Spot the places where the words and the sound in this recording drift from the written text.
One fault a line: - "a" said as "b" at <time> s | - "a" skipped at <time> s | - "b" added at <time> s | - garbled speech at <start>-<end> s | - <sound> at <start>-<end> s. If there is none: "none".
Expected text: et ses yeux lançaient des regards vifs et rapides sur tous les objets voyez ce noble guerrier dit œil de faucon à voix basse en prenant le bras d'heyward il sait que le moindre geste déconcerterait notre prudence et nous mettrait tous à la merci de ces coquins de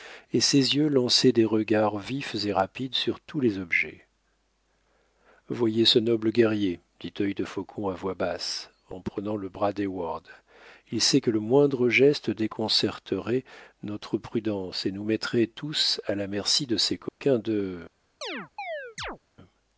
- dropout at 17.1-17.2 s
- chirp at 18.2-19.2 s